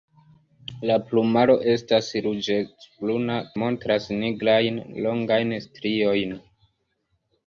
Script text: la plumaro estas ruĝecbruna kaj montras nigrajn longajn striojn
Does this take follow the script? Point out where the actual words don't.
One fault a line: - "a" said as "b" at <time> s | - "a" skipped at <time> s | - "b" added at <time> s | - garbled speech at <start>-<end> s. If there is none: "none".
- "kaj" skipped at 3.4 s